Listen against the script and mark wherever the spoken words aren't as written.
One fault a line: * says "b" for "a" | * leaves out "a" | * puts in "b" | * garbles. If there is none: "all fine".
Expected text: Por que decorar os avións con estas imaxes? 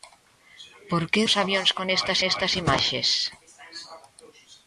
* leaves out "decorar"
* puts in "estas"